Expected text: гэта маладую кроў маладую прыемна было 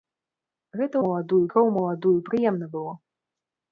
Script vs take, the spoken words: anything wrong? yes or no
no